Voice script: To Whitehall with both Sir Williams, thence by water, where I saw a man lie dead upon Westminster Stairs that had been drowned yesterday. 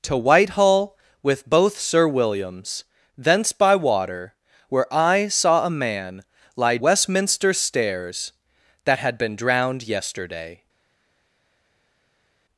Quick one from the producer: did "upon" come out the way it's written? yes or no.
no